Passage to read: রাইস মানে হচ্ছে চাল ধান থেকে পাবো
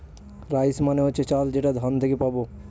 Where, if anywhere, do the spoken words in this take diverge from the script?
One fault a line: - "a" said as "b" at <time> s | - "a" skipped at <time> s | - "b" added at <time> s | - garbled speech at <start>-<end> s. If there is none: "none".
- "যেটা" added at 1.5 s